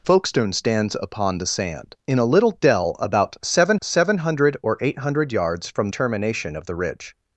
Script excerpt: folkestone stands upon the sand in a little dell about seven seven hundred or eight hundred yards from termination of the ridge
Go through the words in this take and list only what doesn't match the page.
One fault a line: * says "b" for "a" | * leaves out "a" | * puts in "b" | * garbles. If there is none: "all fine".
all fine